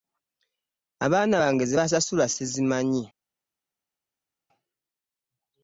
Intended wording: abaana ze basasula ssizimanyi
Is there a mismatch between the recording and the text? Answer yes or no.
yes